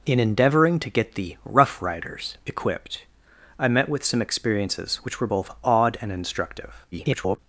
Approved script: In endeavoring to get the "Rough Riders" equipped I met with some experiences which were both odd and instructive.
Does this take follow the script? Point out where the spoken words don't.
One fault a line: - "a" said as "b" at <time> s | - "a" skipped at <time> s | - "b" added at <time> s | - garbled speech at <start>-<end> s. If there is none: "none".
- garbled speech at 6.9-7.4 s